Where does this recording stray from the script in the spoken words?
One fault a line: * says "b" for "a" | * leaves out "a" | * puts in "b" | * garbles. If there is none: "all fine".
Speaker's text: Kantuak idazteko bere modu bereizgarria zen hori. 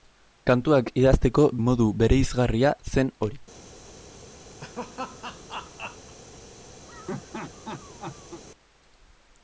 * leaves out "bere"